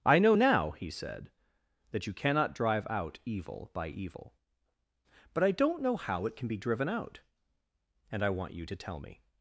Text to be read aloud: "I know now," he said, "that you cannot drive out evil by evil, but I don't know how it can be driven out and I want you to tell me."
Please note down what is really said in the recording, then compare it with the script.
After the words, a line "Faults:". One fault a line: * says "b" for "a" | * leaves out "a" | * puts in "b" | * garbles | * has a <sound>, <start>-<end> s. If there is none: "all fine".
"I know now," he said, "that you cannot drive out evil by evil, but I don't know how it can be driven out and I want you to tell me."
Faults:
all fine